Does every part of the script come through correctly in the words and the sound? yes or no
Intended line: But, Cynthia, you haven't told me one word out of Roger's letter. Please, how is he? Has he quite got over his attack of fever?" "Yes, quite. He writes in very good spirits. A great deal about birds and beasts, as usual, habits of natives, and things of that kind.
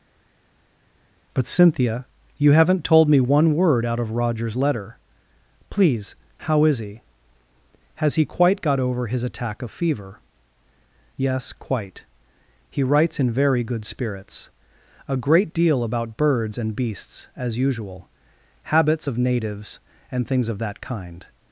yes